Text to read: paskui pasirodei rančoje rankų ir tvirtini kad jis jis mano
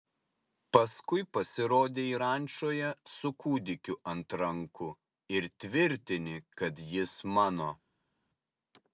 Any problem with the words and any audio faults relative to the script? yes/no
yes